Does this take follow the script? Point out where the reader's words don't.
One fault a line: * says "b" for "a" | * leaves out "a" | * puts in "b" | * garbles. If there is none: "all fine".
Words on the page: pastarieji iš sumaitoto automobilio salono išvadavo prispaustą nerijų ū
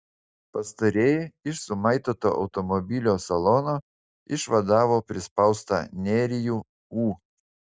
all fine